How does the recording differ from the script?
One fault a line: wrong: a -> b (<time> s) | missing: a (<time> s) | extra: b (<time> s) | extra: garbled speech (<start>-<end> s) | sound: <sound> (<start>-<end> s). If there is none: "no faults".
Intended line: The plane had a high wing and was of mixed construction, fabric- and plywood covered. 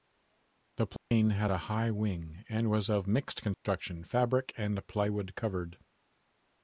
sound: dropout (1.0-1.1 s)
sound: dropout (3.5-3.7 s)